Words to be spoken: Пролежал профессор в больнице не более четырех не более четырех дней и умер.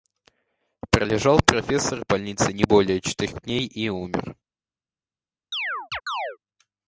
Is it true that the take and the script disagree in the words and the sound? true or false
true